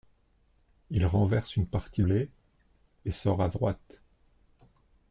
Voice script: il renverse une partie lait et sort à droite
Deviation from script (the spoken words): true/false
false